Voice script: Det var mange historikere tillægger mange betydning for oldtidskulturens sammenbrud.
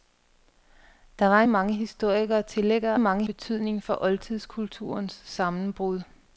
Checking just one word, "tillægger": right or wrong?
right